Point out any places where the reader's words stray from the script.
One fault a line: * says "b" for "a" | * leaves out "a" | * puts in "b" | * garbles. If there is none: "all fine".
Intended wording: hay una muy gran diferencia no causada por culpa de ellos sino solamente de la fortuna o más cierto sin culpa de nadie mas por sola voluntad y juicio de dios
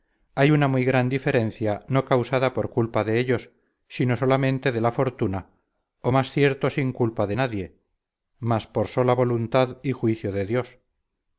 all fine